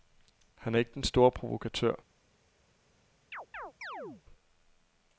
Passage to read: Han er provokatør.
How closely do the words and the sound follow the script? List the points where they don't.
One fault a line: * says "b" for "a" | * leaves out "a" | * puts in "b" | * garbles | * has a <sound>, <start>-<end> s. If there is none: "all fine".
* puts in "ikke den store"
* has a chirp, 3.3-4.2 s